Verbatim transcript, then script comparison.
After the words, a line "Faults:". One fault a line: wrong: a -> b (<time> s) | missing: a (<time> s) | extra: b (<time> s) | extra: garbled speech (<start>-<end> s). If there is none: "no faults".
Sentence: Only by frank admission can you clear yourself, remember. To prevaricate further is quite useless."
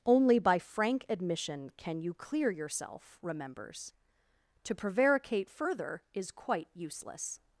Only by frank admission can you clear yourself, remembers. To prevaricate further is quite useless."
Faults:
wrong: remember -> remembers (3.2 s)